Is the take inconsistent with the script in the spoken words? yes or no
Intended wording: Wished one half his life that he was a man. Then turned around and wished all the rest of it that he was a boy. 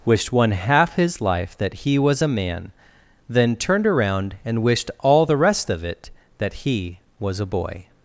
no